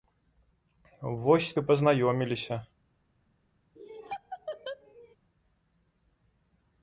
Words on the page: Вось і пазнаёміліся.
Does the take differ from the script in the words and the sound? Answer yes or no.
yes